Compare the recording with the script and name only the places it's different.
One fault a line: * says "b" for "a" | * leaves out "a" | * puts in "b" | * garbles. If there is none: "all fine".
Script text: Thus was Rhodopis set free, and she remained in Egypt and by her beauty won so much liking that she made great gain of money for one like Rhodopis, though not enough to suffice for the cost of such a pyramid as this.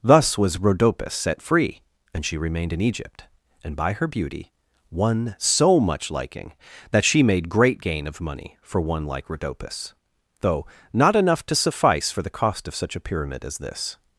all fine